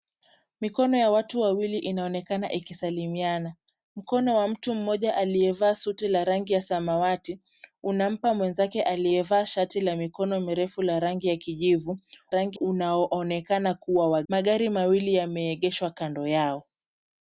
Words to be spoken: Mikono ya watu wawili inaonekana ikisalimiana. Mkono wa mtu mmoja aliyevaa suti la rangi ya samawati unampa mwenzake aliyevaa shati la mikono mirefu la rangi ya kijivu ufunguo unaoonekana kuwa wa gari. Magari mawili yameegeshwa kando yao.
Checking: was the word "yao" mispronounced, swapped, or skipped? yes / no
no